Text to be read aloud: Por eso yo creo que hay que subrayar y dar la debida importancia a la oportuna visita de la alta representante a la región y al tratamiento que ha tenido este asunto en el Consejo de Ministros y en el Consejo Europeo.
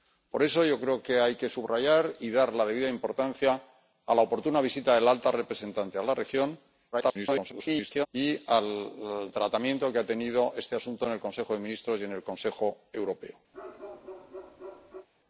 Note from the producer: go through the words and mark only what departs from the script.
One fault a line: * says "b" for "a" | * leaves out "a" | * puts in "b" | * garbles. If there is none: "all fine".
* garbles